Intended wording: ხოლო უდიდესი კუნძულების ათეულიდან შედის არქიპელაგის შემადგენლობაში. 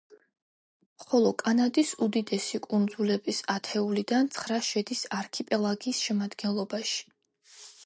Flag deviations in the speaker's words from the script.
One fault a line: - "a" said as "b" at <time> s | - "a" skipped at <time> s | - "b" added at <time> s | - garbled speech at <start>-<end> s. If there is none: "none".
- "კანადის" added at 1.4 s
- "ცხრა" added at 4.4 s